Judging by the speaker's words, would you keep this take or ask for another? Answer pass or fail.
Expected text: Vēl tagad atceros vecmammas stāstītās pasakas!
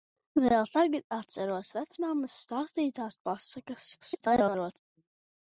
fail